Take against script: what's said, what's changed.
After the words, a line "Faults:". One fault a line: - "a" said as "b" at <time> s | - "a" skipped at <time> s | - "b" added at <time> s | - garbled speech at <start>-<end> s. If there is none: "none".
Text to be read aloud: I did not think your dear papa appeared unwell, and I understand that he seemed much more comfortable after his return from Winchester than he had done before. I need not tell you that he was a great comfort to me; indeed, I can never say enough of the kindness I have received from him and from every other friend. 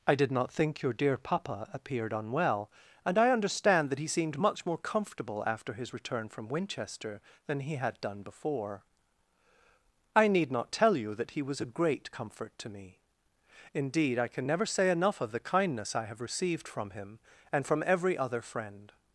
I did not think your dear papa appeared unwell, and I understand that he seemed much more comfortable after his return from Winchester than he had done before. I need not tell you that he was a great comfort to me; indeed, I can never say enough of the kindness I have received from him and from every other friend.
Faults:
none